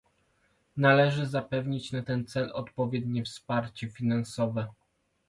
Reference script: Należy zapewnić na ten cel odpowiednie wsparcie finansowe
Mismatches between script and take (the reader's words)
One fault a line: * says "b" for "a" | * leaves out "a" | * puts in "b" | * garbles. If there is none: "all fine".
all fine